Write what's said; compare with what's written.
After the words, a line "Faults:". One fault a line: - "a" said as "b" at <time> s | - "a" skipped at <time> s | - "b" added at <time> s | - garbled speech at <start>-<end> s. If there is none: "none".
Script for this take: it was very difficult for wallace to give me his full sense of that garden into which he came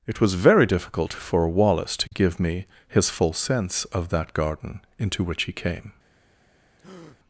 it was very difficult for wallace to give me his full sense of that garden into which he came
Faults:
none